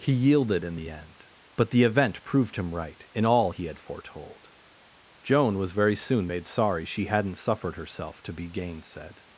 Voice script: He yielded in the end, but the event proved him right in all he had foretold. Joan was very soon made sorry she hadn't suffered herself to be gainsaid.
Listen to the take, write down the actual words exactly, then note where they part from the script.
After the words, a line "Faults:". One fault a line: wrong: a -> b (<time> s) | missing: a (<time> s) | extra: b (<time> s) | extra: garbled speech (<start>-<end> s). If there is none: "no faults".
He yielded in the end, but the event proved him right in all he had foretold. Joan was very soon made sorry she hadn't suffered herself to be gainsaid.
Faults:
no faults